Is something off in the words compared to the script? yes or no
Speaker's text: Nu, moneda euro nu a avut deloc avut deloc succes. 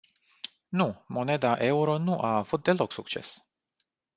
yes